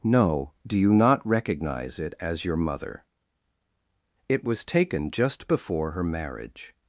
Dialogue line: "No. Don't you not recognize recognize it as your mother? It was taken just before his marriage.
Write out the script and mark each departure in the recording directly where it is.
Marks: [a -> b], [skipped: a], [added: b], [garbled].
"No. [Don't -> Do] you not recognize [skipped: recognize] it as your mother? It was taken just before [his -> her] marriage.